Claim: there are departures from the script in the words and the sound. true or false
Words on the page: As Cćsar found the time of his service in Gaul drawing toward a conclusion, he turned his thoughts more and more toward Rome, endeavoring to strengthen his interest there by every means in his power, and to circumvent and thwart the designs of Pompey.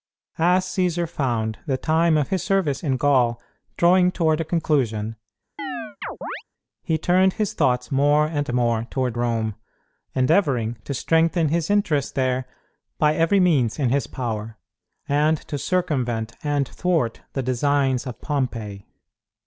true